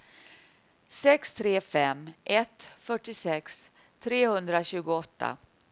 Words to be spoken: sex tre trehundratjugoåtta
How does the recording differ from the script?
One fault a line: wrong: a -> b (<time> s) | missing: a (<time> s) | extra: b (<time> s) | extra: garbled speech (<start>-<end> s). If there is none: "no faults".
extra: fem ett fyrtiosex (1.6 s)